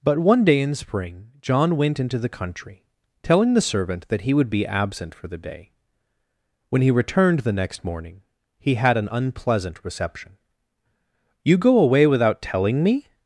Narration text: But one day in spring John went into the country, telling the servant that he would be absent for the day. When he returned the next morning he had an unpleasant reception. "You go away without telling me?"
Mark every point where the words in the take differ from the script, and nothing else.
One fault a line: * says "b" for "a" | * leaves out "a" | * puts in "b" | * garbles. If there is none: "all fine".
all fine